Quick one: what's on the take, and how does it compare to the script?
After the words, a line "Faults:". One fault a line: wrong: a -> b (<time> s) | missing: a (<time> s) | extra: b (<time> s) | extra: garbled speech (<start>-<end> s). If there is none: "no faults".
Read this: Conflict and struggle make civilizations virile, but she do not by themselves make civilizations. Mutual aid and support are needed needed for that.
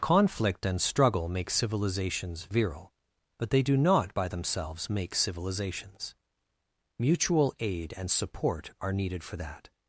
Conflict and struggle make civilizations virile, but they do not by themselves make civilizations. Mutual aid and support are needed for that.
Faults:
wrong: she -> they (3.5 s)
missing: needed (9.2 s)